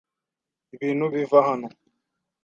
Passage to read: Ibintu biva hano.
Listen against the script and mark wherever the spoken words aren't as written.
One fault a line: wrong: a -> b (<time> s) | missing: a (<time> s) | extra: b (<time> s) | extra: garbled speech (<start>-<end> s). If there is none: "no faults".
no faults